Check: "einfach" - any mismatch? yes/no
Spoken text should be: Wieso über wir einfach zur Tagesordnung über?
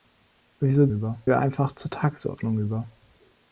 no